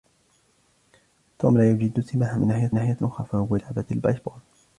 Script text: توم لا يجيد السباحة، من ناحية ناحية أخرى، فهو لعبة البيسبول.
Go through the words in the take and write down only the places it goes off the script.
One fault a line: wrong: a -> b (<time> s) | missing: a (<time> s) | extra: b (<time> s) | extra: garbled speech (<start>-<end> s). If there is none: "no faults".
no faults